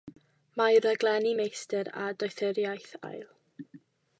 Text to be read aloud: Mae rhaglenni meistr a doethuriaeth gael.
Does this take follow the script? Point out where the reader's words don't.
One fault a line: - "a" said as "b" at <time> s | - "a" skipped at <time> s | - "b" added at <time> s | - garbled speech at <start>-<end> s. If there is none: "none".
none